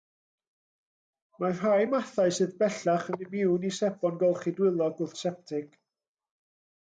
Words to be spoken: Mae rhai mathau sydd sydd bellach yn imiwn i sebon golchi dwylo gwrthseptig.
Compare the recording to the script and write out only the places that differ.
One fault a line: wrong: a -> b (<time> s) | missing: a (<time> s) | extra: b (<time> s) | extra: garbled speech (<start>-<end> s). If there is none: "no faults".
missing: sydd (2.5 s)